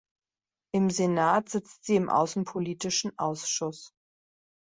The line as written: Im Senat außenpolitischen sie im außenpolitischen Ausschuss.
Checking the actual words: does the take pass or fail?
fail